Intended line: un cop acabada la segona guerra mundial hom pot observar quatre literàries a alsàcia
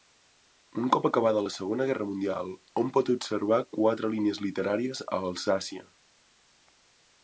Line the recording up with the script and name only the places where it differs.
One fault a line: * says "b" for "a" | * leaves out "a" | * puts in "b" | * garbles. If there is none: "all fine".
* puts in "línies"